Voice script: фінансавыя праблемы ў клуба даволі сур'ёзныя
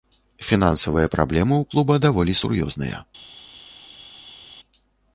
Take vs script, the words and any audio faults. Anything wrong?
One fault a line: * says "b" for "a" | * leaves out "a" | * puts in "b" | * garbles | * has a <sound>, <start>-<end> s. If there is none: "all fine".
all fine